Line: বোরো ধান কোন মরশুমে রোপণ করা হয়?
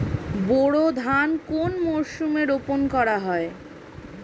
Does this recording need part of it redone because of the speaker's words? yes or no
no